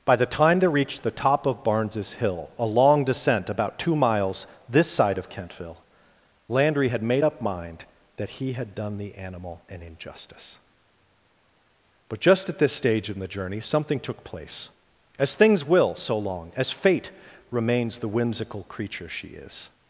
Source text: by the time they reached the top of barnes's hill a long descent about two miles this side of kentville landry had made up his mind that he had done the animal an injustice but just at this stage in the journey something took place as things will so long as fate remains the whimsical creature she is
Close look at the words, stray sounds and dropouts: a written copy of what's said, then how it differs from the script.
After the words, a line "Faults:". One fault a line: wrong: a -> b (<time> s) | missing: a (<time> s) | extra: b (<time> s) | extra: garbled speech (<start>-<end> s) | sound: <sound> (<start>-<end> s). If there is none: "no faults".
by the time they reached the top of barnes's hill a long descent about two miles this side of kentville landry had made up mind that he had done the animal an injustice but just at this stage in the journey something took place as things will so long as fate remains the whimsical creature she is
Faults:
missing: his (7.4 s)